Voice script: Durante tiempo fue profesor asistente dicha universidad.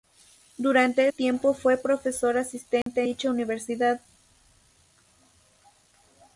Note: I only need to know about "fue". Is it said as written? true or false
true